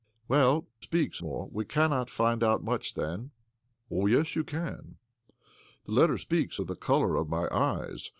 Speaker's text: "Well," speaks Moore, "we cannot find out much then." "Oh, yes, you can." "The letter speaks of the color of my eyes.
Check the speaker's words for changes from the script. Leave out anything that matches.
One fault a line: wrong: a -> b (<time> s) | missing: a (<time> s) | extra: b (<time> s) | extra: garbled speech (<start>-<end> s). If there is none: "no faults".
no faults